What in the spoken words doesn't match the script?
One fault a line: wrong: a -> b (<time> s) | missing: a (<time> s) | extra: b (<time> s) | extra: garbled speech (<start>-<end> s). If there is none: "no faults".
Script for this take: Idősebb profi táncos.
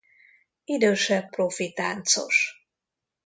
no faults